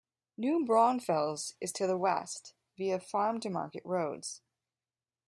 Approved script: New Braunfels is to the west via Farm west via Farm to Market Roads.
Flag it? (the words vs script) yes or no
yes